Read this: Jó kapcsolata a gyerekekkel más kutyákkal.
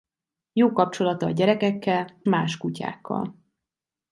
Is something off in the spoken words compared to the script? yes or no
no